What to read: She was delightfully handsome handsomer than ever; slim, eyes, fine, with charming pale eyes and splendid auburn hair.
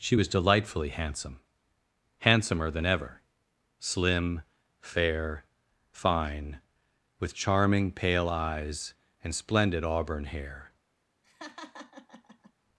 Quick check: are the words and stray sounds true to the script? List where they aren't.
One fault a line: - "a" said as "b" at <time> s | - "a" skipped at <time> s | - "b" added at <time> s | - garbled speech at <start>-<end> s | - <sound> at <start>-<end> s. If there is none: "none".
- "eyes" said as "fair" at 4.8 s
- laugh at 11.2-12.5 s